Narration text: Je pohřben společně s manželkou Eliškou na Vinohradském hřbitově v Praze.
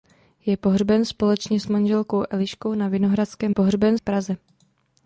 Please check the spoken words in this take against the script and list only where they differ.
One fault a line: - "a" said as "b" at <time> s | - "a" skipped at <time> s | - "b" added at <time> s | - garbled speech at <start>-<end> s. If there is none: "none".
- "hřbitově" said as "pohřben" at 3.5 s